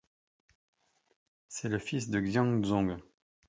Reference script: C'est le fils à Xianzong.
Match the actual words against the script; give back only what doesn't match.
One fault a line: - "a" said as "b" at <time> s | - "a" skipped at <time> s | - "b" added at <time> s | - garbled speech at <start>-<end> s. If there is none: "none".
- "à" said as "de" at 2.1 s